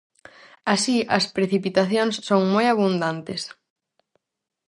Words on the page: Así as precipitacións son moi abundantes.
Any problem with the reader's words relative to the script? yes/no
no